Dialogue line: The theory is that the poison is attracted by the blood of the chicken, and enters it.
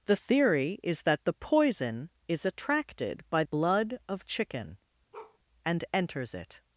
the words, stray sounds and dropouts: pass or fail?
fail